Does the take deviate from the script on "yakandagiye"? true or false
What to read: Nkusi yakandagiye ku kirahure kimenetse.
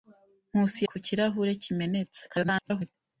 true